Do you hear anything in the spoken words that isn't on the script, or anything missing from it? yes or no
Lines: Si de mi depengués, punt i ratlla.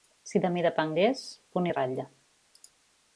no